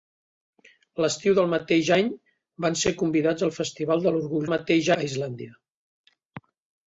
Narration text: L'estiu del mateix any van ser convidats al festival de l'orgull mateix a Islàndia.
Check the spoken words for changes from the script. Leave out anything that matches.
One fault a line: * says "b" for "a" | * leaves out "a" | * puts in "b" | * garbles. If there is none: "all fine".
all fine